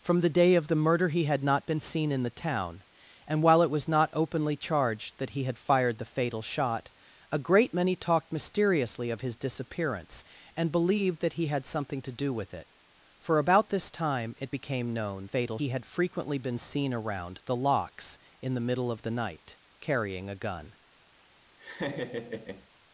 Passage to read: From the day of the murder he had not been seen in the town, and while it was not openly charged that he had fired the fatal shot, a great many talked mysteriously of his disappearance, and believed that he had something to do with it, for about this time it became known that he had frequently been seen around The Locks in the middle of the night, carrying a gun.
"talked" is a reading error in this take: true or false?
false